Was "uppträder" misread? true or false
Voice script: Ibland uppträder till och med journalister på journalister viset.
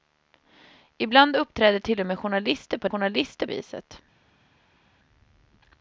false